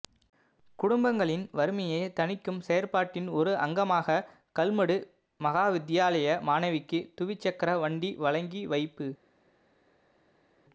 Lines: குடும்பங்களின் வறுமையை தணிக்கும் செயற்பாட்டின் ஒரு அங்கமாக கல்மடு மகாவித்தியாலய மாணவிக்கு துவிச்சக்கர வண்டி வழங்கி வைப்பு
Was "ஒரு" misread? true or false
false